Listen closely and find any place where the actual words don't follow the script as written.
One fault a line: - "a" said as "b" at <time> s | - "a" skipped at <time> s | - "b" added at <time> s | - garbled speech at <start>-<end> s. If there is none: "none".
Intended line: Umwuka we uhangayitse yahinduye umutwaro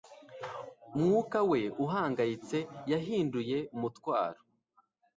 none